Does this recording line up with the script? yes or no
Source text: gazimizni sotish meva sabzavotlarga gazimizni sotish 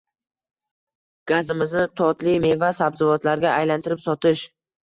no